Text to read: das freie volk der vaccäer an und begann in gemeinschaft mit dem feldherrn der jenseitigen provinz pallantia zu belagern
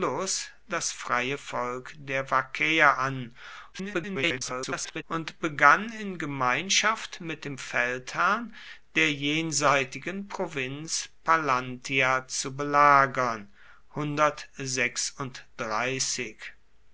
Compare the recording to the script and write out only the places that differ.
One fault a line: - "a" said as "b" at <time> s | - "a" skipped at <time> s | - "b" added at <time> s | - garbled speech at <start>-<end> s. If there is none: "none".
- garbled speech at 3.7-5.0 s